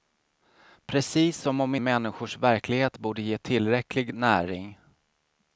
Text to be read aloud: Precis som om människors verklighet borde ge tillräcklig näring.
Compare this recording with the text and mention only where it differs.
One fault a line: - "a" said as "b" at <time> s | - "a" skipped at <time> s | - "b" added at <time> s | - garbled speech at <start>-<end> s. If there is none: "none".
none